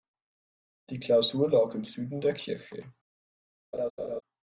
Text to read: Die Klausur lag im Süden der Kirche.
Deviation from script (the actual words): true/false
false